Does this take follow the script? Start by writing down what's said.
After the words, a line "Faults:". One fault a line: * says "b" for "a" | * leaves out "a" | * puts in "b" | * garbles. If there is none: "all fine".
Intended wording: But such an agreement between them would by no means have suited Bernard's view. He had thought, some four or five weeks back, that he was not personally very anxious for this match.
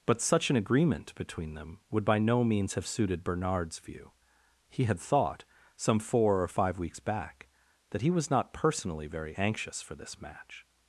But such an agreement between them would by no means have suited Bernard's view. He had thought, some four or five weeks back, that he was not personally very anxious for this match.
Faults:
all fine